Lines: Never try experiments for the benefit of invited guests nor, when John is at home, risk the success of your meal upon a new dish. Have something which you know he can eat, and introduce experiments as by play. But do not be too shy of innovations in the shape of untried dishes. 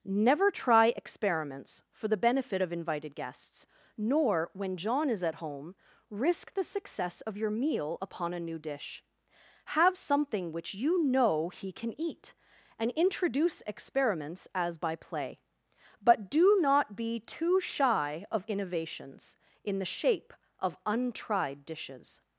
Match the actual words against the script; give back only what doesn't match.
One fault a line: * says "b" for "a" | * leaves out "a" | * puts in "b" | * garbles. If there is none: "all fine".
all fine